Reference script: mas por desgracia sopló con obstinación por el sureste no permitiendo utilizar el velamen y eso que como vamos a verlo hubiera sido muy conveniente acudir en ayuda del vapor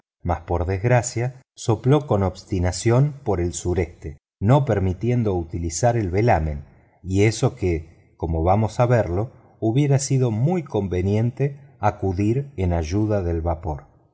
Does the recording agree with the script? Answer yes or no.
yes